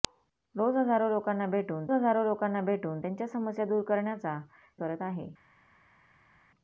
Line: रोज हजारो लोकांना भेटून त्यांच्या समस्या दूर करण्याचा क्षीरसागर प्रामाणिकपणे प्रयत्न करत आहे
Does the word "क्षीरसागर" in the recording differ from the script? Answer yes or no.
yes